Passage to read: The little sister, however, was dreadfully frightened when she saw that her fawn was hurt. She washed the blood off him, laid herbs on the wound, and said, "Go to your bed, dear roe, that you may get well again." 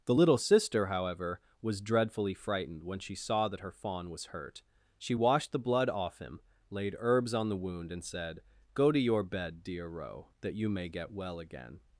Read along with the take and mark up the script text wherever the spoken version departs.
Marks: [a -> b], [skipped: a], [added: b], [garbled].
The little sister, however, was dreadfully frightened when she saw that her fawn was hurt. She washed the blood off him, laid herbs on the wound, and said, "Go to your bed, dear roe, that you may get well again."